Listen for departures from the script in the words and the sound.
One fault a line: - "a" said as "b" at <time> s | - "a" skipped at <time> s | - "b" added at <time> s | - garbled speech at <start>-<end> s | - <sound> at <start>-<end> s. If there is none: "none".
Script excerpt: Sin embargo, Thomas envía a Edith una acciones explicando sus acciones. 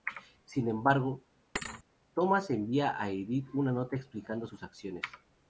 - thud at 1.5-1.8 s
- "acciones" said as "nota" at 3.7 s